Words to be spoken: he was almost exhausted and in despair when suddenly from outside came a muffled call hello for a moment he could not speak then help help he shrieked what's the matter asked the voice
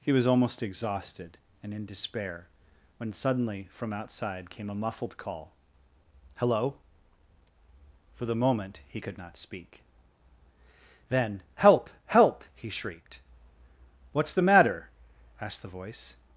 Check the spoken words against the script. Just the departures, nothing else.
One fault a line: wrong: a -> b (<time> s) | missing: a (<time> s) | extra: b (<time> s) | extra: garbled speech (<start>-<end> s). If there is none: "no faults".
wrong: a -> the (8.2 s)